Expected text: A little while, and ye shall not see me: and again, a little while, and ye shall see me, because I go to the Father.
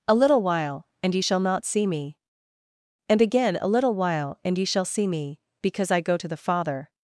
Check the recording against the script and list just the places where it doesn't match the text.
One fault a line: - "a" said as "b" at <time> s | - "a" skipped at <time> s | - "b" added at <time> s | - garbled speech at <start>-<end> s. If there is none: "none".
none